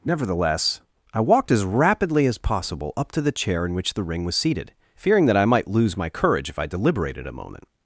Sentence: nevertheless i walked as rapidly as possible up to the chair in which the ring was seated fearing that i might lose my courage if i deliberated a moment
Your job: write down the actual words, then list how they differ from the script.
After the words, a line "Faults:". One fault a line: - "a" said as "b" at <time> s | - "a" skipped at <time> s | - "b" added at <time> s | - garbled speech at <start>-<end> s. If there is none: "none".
nevertheless i walked as rapidly as possible up to the chair in which the ring was seated fearing that i might lose my courage if i deliberated a moment
Faults:
none